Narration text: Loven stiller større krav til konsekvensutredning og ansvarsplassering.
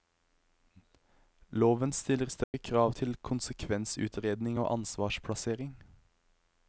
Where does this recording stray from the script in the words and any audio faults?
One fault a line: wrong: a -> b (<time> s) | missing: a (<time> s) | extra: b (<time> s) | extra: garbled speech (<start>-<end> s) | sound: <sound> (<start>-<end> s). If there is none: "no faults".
sound: dropout (2.4-2.5 s)